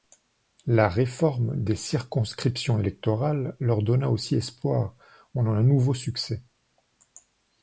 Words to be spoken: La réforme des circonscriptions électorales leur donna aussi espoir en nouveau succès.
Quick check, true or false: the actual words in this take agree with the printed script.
false